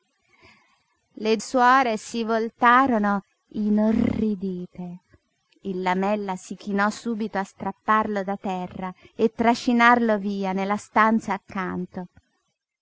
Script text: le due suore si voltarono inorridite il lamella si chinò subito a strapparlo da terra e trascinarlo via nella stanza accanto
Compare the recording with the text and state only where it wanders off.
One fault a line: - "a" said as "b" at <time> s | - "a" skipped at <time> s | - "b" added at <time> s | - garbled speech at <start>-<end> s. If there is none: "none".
- "due" skipped at 1.4 s